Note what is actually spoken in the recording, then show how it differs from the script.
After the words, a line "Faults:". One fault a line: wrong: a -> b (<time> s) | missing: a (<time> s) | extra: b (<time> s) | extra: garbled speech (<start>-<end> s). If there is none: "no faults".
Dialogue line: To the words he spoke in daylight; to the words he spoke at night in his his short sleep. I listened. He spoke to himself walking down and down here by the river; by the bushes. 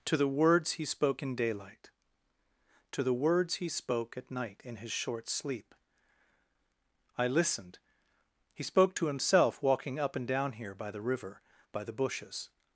To the words he spoke in daylight; to the words he spoke at night in his short sleep. I listened. He spoke to himself walking up and down here by the river; by the bushes.
Faults:
missing: his (4.9 s)
wrong: down -> up (10.0 s)